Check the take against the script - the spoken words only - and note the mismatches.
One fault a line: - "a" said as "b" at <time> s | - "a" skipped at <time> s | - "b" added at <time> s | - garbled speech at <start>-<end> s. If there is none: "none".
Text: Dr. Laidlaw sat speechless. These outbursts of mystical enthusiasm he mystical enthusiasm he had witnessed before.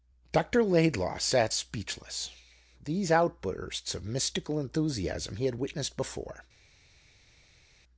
- "mystical enthusiasm he" skipped at 5.5 s